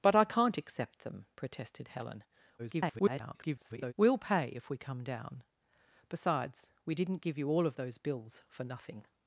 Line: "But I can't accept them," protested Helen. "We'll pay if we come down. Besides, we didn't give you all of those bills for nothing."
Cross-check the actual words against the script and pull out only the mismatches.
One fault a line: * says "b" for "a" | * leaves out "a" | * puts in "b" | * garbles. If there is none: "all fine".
* garbles